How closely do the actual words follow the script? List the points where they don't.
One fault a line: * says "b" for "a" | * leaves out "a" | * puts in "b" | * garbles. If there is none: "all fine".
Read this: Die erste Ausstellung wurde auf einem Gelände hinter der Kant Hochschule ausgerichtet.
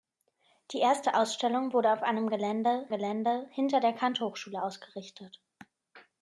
* puts in "Gelände"